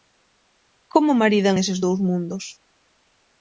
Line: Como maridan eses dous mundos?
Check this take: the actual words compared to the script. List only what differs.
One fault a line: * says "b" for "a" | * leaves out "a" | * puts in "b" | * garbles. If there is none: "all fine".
all fine